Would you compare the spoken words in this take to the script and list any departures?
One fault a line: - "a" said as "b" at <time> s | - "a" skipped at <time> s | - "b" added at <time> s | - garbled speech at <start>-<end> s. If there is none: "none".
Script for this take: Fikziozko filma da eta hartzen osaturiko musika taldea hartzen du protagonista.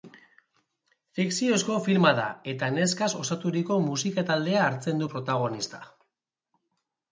- "hartzen" said as "neskaz" at 2.8 s